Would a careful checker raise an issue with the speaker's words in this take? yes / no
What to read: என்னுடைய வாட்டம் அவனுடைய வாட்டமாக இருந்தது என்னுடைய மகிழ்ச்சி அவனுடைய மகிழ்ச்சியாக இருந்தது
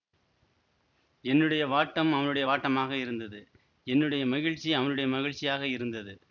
no